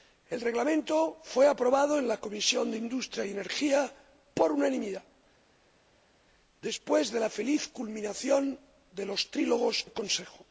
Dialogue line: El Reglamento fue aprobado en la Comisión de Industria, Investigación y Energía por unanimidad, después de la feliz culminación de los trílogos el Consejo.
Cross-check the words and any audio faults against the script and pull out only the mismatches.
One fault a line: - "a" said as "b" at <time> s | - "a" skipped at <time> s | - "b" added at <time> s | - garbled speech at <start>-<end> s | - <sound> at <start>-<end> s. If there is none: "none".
none